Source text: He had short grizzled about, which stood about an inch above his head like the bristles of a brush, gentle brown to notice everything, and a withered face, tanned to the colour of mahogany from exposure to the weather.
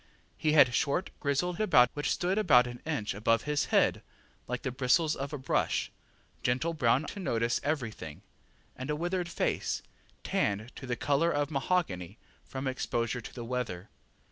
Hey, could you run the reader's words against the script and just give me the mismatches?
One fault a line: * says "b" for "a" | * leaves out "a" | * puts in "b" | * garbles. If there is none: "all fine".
all fine